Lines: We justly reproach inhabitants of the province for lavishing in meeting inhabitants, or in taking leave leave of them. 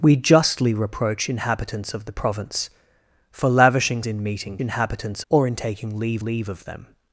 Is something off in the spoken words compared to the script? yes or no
no